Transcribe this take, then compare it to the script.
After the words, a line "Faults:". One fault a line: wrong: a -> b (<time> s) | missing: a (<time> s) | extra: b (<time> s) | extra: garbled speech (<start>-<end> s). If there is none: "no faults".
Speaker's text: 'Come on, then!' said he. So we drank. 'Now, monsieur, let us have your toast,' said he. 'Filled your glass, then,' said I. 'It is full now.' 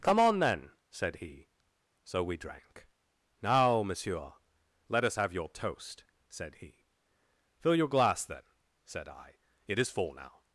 'Come on, then!' said he. So we drank. 'Now, monsieur, let us have your toast,' said he. 'Fill your glass, then,' said I. 'It is full now.'
Faults:
wrong: Filled -> Fill (7.6 s)